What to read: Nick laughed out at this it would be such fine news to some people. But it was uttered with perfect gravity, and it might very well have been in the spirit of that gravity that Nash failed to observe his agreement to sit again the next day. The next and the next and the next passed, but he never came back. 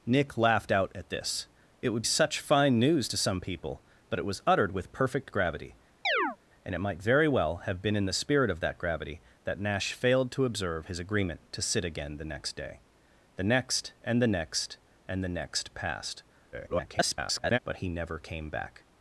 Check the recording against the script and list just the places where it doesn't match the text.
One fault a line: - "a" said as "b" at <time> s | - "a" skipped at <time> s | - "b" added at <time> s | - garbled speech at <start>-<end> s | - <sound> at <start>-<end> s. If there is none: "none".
- "be" skipped at 2.0 s
- chirp at 6.0-6.4 s
- garbled speech at 16.5-17.6 s